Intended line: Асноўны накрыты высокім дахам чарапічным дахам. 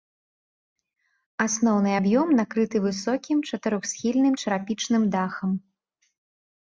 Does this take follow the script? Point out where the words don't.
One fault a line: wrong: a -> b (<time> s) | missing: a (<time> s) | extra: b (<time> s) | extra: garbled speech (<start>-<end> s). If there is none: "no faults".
extra: аб'ём (2.0 s)
wrong: дахам -> чатырохсхільным (3.5 s)